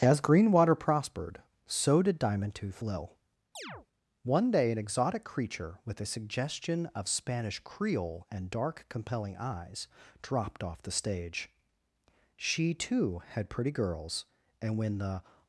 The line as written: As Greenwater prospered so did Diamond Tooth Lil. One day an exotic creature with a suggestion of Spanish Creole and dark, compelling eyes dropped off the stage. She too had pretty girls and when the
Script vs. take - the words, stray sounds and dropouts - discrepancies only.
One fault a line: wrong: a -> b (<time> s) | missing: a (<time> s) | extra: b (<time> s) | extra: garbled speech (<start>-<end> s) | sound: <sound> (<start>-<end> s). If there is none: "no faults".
sound: chirp (3.5-3.9 s)